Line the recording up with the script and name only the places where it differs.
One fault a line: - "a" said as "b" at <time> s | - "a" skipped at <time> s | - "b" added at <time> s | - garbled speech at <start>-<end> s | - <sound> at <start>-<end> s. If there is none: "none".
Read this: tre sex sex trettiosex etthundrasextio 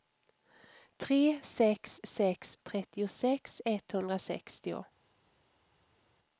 none